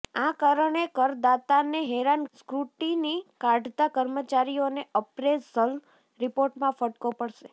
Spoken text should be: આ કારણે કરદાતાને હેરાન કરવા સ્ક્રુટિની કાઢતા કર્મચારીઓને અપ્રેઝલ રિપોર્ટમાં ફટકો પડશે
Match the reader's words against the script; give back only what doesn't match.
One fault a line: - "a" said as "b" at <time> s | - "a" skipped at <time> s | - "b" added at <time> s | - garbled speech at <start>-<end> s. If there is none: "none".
- "કરવા" skipped at 2.3 s